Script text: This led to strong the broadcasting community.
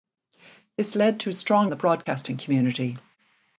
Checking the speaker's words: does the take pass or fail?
pass